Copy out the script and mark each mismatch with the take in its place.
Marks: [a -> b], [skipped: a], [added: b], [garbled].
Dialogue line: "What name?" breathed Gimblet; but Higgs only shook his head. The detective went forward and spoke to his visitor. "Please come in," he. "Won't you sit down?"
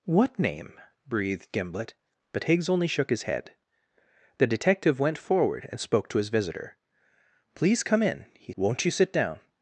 "What name?" breathed Gimblet; but Higgs only shook his head. The detective went forward and spoke to his visitor. "Please come in," he. "Won't you sit down?"